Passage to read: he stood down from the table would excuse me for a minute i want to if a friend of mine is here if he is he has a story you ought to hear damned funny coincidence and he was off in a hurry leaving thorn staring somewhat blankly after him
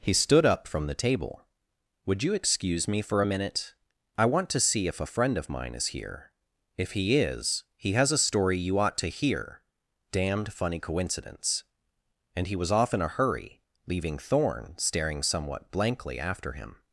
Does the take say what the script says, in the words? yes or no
no